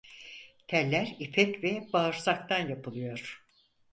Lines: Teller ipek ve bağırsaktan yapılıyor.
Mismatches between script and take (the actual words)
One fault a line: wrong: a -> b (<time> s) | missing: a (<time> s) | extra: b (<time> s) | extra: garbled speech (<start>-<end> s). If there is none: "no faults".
no faults